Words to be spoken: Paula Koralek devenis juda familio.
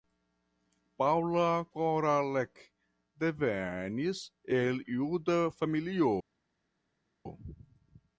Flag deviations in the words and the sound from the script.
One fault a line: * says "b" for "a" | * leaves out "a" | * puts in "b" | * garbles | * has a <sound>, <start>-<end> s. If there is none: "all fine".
* puts in "el"